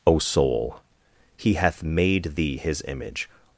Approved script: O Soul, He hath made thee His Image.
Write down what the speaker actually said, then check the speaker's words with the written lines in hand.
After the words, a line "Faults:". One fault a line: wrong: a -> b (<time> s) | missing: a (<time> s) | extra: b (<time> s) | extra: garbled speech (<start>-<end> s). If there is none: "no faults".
O Soul, He hath made thee His Image.
Faults:
no faults